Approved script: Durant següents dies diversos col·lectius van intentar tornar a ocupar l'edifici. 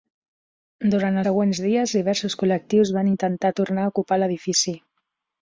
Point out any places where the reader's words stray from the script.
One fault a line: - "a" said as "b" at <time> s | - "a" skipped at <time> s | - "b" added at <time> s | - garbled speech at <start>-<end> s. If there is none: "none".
none